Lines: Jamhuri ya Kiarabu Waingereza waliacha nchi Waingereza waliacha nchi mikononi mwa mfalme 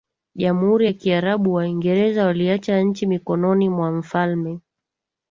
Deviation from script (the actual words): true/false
true